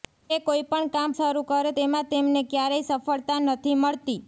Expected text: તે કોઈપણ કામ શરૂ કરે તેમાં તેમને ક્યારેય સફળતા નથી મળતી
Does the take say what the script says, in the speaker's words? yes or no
yes